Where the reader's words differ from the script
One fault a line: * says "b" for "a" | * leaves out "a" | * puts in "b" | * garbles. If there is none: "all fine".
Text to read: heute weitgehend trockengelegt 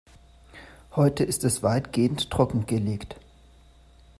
* puts in "ist es"